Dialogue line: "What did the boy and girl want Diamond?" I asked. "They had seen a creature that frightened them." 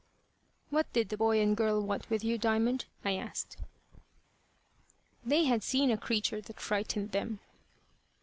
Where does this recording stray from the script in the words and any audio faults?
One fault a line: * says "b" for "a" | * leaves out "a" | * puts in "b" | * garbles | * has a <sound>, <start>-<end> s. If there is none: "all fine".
* puts in "with you"